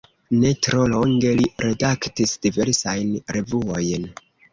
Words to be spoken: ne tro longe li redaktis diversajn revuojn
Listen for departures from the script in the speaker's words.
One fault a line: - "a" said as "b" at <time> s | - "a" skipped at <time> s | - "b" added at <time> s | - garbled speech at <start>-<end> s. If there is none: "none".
none